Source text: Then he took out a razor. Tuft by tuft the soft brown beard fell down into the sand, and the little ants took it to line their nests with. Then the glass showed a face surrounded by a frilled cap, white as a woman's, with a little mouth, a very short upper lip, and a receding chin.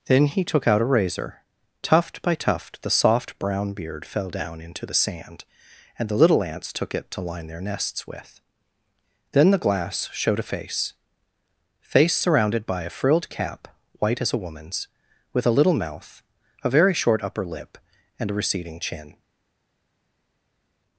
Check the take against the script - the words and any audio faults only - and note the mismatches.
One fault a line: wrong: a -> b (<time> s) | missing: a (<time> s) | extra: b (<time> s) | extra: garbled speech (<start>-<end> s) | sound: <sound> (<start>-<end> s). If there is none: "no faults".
extra: face (11.8 s)